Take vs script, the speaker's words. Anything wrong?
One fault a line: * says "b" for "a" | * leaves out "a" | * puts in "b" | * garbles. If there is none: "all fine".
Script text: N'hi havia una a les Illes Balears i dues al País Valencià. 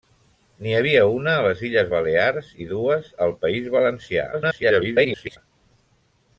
* garbles